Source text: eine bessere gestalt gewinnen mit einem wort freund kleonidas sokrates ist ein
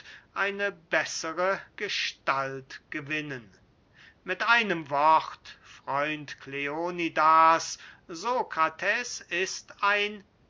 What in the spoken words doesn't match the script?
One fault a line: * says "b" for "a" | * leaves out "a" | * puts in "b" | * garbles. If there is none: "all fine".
all fine